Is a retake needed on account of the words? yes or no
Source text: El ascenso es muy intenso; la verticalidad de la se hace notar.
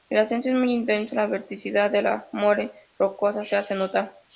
yes